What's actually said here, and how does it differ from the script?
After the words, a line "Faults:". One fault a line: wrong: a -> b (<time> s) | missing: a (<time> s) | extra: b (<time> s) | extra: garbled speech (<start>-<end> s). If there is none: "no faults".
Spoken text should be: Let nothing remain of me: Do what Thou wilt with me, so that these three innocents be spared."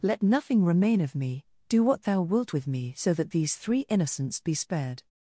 Let nothing remain of me: Do what Thou wilt with me, so that these three innocents be spared."
Faults:
no faults